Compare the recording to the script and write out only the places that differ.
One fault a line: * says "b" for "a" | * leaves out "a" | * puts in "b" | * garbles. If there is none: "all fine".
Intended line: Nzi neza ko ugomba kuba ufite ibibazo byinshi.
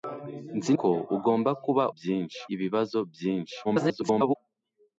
* leaves out "neza"
* says "byinshi" for "ufite"
* garbles